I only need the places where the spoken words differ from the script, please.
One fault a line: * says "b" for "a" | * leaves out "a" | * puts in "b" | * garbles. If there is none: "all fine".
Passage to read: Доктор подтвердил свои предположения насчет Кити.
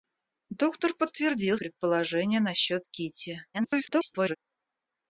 * leaves out "свои"
* garbles